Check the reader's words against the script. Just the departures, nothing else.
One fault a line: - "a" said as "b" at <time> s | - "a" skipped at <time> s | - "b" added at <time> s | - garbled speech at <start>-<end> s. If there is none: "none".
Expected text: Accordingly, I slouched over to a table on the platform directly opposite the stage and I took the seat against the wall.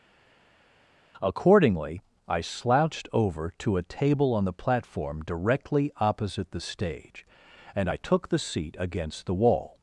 none